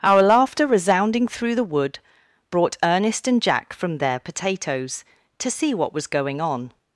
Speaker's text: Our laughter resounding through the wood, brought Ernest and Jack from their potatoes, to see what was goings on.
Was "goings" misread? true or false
true